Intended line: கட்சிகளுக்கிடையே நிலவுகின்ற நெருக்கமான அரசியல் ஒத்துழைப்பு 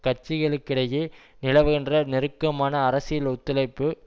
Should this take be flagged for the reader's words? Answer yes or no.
no